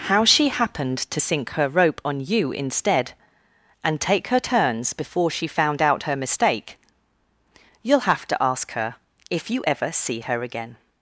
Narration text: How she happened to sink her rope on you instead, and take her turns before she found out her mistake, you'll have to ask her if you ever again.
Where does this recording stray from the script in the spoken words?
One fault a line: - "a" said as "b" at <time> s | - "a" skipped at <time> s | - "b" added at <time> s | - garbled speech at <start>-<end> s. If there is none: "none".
- "see her" added at 9.9 s